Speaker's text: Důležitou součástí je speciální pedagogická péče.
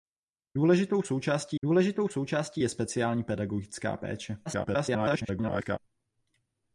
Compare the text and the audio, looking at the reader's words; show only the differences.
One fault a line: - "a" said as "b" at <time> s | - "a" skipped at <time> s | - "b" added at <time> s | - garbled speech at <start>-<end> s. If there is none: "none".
- "důležitou součástí" added at 1.6 s
- garbled speech at 4.5-5.8 s